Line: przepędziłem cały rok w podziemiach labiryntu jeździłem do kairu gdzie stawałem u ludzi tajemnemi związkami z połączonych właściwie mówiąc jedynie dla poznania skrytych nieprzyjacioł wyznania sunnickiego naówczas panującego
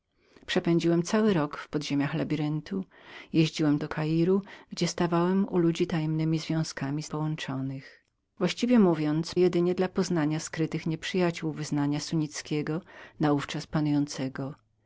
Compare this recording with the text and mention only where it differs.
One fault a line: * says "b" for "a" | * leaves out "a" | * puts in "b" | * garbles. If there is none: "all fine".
all fine